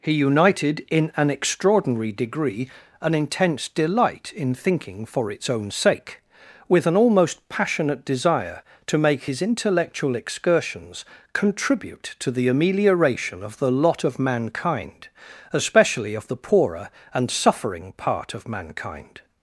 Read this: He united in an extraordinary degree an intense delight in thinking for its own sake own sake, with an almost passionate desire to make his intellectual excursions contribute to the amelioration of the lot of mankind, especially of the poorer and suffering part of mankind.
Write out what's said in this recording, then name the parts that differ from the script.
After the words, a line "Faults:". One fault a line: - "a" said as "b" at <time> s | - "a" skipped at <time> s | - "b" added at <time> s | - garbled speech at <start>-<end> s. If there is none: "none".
He united in an extraordinary degree an intense delight in thinking for its own sake, with an almost passionate desire to make his intellectual excursions contribute to the amelioration of the lot of mankind, especially of the poorer and suffering part of mankind.
Faults:
- "own sake" skipped at 6.2 s